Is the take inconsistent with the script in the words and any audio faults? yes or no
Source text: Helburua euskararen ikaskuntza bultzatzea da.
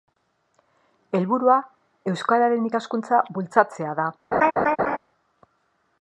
yes